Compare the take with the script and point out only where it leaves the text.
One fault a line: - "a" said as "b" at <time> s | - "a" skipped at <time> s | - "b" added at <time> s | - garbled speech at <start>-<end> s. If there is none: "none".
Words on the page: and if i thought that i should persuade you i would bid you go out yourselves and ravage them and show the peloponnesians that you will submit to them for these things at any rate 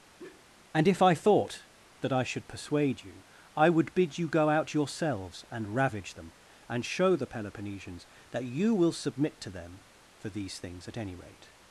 none